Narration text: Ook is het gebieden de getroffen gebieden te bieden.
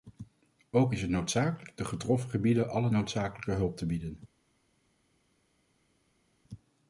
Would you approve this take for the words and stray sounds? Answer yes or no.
no